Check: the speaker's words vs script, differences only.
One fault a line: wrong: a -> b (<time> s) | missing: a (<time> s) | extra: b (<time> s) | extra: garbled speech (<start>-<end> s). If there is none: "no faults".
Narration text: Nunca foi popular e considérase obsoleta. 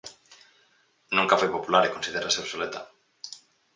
no faults